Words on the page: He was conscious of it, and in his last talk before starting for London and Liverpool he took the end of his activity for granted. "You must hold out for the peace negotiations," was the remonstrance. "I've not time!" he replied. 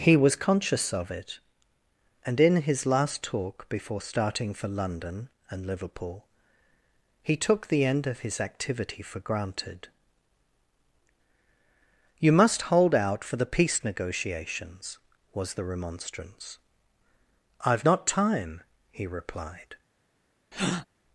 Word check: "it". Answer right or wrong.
right